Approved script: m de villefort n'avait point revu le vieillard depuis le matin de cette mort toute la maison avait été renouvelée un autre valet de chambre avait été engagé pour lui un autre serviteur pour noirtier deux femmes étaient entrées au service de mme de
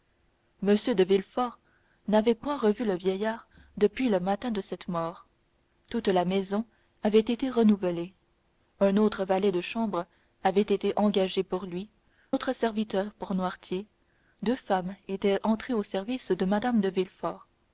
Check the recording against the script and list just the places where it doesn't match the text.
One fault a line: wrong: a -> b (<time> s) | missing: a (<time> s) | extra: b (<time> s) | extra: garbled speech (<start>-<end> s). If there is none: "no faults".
missing: un (11.9 s)